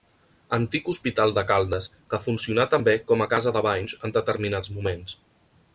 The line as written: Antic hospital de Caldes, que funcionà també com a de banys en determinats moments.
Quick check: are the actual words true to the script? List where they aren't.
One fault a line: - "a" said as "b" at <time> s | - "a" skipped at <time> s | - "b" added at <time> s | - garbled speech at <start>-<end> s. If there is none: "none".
- "casa" added at 3.3 s